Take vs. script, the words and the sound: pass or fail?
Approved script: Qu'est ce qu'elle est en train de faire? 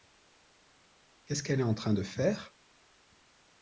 pass